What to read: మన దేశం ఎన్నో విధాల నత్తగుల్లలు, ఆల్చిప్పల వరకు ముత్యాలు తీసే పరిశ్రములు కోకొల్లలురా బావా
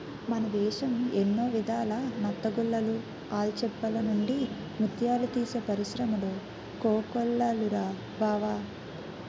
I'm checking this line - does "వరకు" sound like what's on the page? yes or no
no